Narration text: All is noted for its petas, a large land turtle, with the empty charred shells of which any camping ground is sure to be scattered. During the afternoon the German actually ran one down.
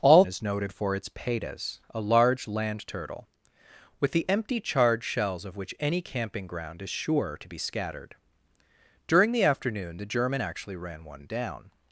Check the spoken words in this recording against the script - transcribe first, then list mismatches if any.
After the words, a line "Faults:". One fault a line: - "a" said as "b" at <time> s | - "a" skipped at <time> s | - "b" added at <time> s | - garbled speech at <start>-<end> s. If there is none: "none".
All is noted for its petas, a large land turtle, with the empty charred shells of which any camping ground is sure to be scattered. During the afternoon the German actually ran one down.
Faults:
none